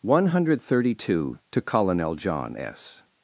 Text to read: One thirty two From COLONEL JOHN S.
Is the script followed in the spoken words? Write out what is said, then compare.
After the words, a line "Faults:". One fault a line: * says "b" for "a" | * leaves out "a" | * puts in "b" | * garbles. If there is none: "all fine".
One hundred thirty two TO COLONEL JOHN S.
Faults:
* puts in "hundred"
* says "TO" for "From"